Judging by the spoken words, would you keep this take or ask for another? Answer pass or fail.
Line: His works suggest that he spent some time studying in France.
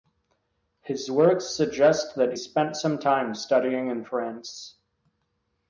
fail